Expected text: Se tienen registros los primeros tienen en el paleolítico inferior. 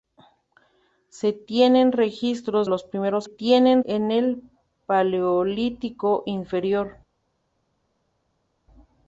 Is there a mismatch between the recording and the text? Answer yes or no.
no